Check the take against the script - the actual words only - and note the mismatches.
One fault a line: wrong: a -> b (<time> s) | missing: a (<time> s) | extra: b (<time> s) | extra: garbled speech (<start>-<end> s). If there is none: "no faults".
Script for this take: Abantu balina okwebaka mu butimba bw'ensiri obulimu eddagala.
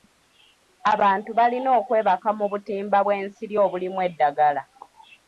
no faults